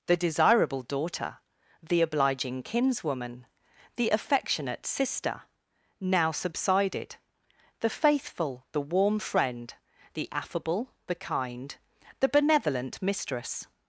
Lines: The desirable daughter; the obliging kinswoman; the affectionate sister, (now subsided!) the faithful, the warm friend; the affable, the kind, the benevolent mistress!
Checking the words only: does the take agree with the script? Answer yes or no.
yes